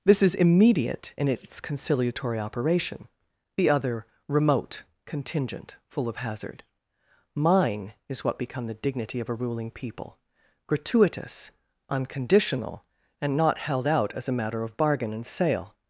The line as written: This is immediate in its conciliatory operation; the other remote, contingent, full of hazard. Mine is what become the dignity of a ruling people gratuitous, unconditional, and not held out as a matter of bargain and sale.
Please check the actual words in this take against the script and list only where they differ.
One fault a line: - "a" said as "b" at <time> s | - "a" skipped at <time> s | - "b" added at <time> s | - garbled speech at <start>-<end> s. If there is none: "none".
none